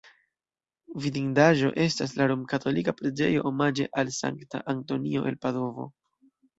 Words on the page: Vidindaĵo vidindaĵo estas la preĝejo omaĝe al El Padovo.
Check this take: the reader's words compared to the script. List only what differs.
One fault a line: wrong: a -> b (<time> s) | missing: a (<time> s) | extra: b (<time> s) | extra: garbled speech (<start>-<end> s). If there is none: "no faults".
missing: vidindaĵo (1.7 s)
extra: romkatolika (2.3 s)
extra: Sankta Antonio (4.2 s)